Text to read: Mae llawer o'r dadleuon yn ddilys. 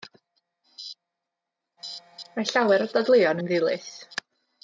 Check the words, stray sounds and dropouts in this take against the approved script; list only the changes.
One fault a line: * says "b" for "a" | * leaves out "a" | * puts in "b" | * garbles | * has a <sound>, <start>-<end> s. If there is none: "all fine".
all fine